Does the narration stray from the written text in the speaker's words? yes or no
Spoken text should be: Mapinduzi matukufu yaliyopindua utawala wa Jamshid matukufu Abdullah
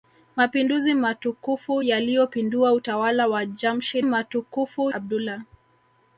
no